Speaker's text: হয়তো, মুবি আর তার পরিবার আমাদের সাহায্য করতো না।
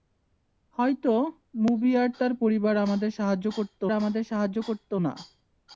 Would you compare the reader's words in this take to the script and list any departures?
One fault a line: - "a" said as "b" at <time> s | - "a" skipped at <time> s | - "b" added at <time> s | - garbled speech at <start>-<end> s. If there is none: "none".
- "আমাদের সাহায্য করতো" added at 3.9 s